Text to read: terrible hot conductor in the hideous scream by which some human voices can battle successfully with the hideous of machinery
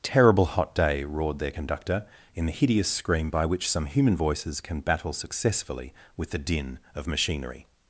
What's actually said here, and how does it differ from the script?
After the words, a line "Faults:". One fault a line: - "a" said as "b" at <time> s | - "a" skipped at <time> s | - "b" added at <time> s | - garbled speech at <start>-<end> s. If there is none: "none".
terrible hot day roared their conductor in the hideous scream by which some human voices can battle successfully with the din of machinery
Faults:
- "day roared their" added at 0.7 s
- "hideous" said as "din" at 6.4 s